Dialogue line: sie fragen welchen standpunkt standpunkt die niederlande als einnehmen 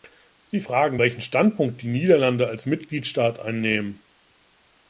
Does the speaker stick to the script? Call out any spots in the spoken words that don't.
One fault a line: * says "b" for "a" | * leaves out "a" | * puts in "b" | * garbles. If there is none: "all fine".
* leaves out "standpunkt"
* puts in "mitgliedstaat"